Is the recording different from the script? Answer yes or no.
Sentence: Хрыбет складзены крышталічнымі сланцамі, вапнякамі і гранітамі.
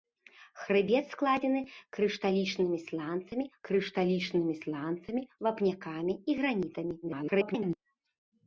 yes